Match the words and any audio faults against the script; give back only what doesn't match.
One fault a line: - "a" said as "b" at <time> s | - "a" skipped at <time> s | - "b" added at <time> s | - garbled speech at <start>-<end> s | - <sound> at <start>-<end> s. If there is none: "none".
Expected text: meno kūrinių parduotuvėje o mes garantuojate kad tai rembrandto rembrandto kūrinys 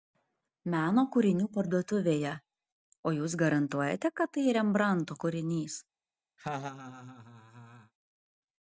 - "mes" said as "jūs" at 3.2 s
- "rembrandto" skipped at 5.2 s
- laugh at 6.4-7.9 s